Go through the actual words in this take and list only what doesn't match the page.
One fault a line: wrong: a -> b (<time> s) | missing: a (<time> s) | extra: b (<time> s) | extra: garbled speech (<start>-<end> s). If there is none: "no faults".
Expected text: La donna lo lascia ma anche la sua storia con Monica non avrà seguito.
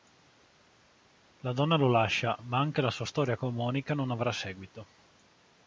no faults